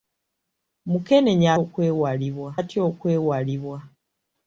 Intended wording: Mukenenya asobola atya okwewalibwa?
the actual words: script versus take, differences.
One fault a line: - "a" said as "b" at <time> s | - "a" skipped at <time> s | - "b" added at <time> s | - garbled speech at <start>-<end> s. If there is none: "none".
- "asobola" said as "okwewalibwa" at 1.6 s